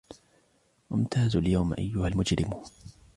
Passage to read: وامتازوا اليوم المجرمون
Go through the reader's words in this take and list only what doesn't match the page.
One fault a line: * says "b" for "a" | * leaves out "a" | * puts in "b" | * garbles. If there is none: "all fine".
* puts in "أيها"